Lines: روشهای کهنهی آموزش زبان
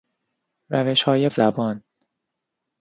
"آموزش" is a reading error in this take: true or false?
true